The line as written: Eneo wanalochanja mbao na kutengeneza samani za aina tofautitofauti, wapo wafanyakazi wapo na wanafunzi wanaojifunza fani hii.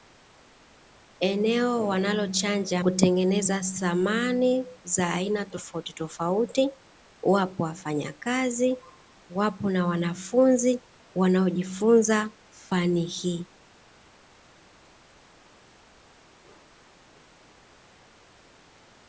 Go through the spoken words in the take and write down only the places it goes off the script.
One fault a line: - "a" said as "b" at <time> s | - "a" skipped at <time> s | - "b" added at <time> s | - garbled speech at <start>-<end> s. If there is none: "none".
- "mbao na" skipped at 2.8 s